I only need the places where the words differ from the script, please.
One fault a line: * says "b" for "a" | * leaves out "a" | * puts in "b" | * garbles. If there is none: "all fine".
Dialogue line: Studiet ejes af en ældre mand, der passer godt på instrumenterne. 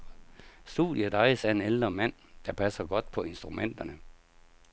all fine